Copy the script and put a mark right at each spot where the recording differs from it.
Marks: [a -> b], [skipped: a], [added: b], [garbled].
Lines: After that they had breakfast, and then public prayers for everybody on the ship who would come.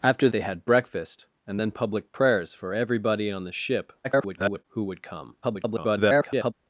After [skipped: that] they had breakfast, and then public prayers for everybody on the ship [garbled] who would come. [garbled]